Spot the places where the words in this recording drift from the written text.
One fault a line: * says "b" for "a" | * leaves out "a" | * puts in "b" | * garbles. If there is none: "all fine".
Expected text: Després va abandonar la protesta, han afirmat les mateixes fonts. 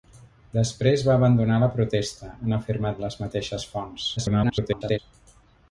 * garbles